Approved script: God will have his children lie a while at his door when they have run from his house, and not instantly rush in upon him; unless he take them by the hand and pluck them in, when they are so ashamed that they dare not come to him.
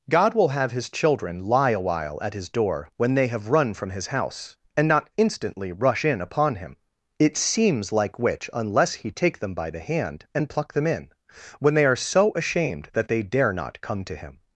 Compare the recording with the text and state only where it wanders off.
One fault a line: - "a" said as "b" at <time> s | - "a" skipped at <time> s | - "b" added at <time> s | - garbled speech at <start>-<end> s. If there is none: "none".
- "it seems like which" added at 7.2 s